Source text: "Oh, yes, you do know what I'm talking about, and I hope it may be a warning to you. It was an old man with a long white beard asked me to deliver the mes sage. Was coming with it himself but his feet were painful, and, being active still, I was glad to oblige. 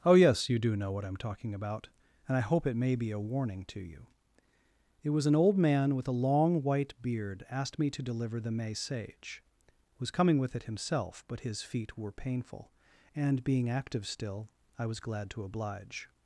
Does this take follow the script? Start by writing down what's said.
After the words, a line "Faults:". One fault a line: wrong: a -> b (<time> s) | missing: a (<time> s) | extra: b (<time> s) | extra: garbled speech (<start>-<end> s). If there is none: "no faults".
"Oh, yes, you do know what I'm talking about, and I hope it may be a warning to you. It was an old man with a long white beard asked me to deliver the may sage. Was coming with it himself but his feet were painful, and, being active still, I was glad to oblige.
Faults:
wrong: mes -> may (8.5 s)